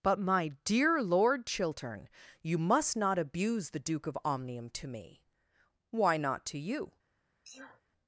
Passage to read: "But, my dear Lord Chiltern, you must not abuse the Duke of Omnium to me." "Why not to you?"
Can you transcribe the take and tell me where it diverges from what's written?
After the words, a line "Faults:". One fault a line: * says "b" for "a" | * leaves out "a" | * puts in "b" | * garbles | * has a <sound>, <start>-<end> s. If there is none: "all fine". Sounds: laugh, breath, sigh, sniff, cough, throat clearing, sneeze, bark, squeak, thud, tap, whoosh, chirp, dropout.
"But, my dear Lord Chiltern, you must not abuse the Duke of Omnium to me." "Why not to you?"
Faults:
* has a sneeze, 7.4-7.8 s